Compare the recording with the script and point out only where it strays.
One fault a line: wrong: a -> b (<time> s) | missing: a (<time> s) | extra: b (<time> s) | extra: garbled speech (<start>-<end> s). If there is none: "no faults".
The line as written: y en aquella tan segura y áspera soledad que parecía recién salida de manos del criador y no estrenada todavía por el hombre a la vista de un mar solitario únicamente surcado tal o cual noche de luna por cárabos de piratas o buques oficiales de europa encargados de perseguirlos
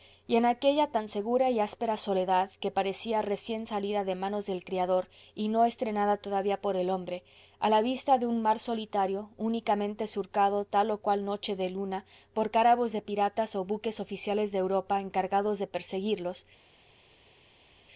no faults